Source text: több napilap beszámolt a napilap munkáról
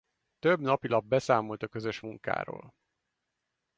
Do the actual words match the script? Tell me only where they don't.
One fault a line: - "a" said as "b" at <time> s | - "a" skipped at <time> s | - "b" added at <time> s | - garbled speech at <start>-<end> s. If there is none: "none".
- "napilap" said as "közös" at 1.7 s